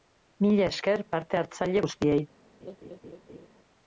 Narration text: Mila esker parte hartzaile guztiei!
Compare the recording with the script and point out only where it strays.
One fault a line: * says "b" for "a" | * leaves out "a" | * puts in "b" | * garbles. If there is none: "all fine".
all fine